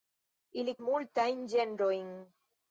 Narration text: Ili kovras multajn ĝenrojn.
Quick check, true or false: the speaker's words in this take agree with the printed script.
false